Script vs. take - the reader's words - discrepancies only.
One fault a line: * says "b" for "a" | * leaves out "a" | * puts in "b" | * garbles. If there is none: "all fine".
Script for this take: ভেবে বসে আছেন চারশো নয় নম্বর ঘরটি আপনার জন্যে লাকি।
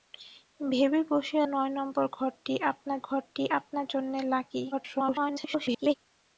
* says "নয় নম্বর ঘরটি আপনার" for "আছেন চারশো নয় নম্বর"
* garbles